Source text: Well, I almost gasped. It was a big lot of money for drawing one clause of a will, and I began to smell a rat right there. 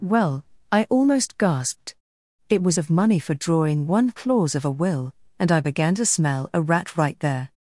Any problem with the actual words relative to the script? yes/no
yes